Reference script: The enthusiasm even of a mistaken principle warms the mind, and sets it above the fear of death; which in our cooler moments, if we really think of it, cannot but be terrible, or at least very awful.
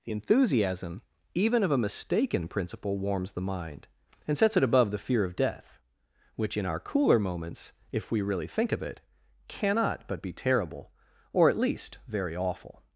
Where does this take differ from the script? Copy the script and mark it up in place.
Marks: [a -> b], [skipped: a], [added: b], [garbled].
The enthusiasm even of a mistaken principle warms the mind, and sets it above the fear of death; which in our cooler moments, if we really think of it, cannot but be terrible, or at least very awful.